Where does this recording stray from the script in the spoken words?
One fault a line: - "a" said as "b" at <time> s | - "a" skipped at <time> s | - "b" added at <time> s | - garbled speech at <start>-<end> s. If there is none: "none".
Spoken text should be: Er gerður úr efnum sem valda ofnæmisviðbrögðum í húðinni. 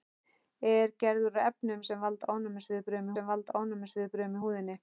- "sem valda ofnæmisviðbrögðum" added at 3.1 s